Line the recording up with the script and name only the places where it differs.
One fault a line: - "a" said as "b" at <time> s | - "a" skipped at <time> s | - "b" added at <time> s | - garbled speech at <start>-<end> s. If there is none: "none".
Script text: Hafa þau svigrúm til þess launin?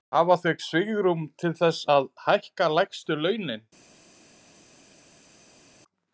- "að hækka lægstu" added at 2.0 s